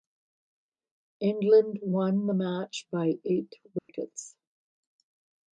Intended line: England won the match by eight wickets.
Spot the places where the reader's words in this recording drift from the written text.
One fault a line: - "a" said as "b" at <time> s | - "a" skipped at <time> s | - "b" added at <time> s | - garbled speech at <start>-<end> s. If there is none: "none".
none